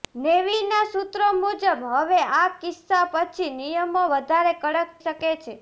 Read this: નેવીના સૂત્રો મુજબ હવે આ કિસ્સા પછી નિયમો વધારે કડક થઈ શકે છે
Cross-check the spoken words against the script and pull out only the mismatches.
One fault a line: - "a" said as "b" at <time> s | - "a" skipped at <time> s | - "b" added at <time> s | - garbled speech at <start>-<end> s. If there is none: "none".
- "થઈ" skipped at 5.0 s